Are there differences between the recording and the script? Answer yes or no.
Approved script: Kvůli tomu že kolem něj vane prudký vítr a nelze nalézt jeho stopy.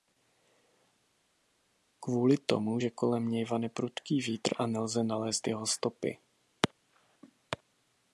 no